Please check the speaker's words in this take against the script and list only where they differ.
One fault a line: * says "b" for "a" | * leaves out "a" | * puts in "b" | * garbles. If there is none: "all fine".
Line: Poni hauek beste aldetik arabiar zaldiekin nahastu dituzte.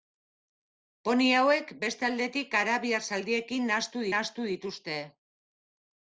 * puts in "nahastu"